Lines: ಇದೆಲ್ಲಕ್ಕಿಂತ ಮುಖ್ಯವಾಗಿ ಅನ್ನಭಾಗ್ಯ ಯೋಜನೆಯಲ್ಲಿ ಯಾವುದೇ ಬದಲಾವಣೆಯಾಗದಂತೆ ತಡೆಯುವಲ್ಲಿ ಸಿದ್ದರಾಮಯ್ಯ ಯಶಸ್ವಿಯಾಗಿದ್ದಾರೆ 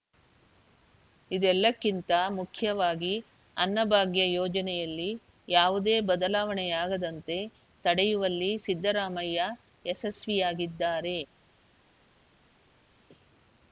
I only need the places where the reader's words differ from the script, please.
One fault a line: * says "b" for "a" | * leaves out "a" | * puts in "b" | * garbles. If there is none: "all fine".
all fine